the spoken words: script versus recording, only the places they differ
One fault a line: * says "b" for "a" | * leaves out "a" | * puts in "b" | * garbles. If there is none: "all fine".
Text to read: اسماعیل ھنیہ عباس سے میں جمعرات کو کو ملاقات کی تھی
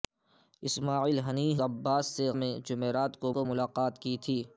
all fine